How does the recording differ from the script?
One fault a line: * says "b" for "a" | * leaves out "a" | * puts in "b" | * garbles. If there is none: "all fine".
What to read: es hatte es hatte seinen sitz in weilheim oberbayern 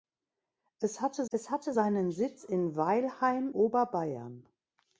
all fine